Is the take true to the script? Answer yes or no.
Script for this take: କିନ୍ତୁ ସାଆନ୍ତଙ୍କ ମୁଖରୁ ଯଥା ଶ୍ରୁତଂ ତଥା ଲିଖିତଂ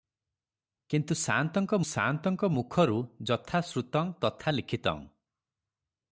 no